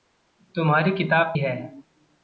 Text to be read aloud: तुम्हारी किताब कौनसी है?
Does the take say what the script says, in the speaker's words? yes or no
no